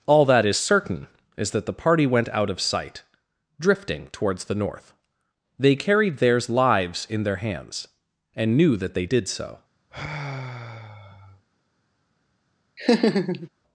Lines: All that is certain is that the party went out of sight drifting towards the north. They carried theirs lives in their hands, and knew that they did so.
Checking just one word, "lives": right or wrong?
right